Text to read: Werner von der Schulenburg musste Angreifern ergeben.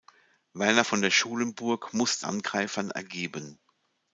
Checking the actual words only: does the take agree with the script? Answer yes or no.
yes